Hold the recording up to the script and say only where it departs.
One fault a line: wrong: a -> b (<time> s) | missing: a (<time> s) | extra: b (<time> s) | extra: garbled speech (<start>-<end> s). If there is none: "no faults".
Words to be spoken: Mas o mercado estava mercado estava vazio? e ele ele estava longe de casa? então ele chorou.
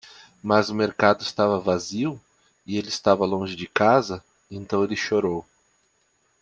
missing: mercado estava (1.6 s)
missing: ele (2.9 s)